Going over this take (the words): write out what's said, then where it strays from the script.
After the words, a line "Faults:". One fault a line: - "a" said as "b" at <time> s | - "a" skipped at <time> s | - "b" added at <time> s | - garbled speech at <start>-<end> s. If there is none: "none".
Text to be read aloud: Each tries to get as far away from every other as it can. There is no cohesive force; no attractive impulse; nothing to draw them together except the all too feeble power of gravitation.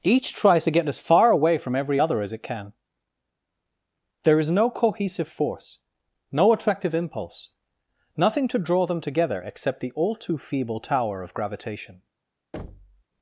Each tries to get as far away from every other as it can. There is no cohesive force; no attractive impulse; nothing to draw them together except the all too feeble tower of gravitation.
Faults:
- "power" said as "tower" at 10.8 s